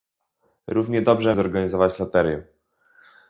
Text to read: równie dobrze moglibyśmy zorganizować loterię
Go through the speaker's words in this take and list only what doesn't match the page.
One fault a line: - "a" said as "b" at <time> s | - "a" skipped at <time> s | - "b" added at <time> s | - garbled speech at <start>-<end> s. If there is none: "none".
- "moglibyśmy" skipped at 1.4 s